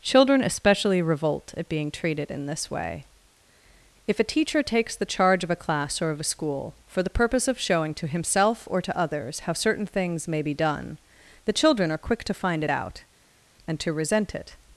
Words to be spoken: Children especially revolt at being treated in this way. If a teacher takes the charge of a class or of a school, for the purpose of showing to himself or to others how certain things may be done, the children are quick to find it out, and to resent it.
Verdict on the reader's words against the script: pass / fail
pass